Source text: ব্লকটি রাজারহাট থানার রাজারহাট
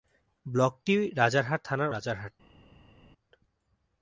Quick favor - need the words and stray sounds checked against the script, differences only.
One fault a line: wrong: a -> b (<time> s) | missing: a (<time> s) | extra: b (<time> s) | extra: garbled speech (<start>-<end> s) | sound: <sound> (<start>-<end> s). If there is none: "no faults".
no faults